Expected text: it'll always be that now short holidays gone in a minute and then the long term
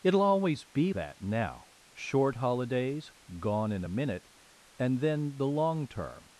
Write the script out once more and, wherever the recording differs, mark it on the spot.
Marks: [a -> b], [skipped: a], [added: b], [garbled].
it'll always be that now short holidays gone in a minute and then the long term